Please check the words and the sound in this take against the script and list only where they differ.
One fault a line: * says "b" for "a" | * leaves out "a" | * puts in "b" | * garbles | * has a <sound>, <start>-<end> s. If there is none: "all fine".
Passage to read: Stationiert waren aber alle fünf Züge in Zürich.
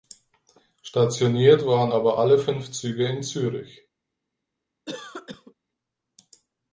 * has a cough, 4.9-5.5 s